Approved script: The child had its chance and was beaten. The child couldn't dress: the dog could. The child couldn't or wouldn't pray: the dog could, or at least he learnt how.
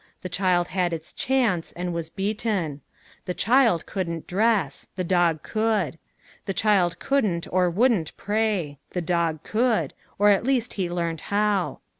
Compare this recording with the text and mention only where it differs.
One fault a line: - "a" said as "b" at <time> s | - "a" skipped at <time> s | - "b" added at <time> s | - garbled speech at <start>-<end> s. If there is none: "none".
none